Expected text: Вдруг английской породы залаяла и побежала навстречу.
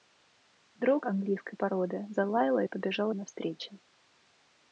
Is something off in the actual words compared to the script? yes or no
no